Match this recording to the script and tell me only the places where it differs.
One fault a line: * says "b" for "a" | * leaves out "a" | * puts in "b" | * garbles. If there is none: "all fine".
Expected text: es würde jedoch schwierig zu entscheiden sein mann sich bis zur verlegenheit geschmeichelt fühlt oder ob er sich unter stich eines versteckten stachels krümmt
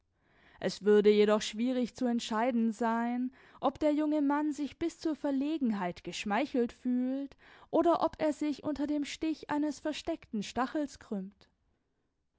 * puts in "ob der junge"
* puts in "dem"